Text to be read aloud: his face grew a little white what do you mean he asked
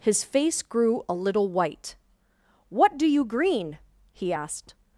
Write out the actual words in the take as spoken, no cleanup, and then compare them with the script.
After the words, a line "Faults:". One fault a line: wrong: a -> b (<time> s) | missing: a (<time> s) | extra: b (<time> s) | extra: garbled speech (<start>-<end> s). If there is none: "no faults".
his face grew a little white what do you green he asked
Faults:
wrong: mean -> green (3.2 s)